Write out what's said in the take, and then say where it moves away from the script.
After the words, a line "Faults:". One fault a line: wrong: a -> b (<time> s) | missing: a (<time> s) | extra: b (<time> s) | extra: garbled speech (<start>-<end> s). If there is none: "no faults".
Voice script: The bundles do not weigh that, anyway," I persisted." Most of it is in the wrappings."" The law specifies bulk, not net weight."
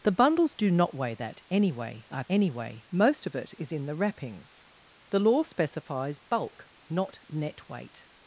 The bundles do not weigh that, anyway," I anyway." Most of it is in the wrappings."" The law specifies bulk, not net weight."
Faults:
wrong: persisted -> anyway (2.3 s)